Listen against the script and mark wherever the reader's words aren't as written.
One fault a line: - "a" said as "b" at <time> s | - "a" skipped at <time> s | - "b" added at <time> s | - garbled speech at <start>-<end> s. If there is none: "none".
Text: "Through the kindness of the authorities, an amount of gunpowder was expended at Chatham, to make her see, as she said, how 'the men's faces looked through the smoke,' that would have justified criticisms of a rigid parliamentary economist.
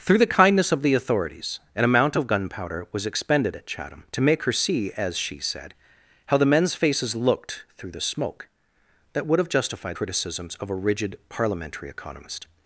none